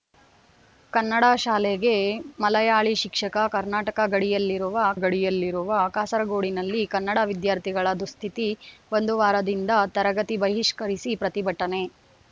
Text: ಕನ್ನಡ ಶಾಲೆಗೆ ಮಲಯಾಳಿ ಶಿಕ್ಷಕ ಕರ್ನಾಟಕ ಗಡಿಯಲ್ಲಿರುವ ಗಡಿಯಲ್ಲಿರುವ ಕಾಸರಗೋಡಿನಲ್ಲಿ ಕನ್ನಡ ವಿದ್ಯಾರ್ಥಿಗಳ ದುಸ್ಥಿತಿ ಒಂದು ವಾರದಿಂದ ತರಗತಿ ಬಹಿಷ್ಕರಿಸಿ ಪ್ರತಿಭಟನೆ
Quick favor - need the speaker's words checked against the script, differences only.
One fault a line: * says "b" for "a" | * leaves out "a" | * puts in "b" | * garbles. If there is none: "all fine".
all fine